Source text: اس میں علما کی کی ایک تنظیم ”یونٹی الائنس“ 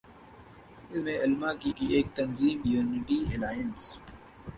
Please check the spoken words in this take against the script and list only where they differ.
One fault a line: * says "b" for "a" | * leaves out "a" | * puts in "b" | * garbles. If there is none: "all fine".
all fine